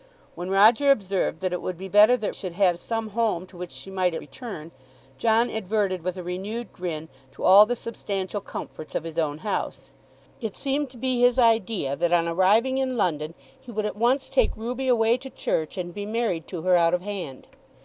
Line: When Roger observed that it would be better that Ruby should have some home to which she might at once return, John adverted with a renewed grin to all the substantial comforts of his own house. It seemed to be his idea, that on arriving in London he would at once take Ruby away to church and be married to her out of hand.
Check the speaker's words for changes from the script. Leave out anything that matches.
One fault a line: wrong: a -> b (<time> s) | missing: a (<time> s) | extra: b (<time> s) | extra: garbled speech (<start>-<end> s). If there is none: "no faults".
missing: Ruby (2.3 s)
missing: once (4.2 s)